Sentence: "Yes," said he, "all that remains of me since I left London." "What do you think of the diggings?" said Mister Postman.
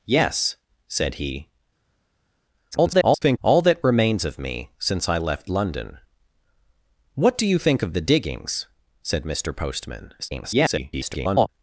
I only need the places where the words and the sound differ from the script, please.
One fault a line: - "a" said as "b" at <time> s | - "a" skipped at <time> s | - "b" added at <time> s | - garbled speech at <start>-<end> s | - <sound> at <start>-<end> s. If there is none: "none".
- garbled speech at 2.7-3.4 s
- garbled speech at 10.2-11.5 s